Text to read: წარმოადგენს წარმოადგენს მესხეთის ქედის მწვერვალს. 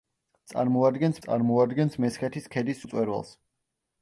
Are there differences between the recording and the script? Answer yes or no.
no